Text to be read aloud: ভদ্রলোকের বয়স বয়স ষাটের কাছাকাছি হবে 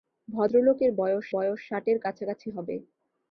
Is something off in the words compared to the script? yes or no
no